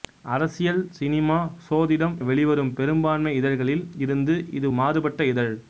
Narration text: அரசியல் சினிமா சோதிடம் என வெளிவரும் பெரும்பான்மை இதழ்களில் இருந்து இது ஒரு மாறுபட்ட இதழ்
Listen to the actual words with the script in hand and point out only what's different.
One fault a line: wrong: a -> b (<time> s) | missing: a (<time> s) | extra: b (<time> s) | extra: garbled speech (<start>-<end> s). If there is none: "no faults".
missing: என (2.1 s)
missing: ஒரு (4.7 s)